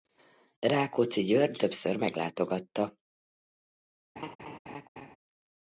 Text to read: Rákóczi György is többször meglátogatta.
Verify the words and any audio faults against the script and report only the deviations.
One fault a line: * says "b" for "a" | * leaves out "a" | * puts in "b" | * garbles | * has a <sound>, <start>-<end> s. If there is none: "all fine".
* leaves out "is"
* has a laugh, 4.2-5.2 s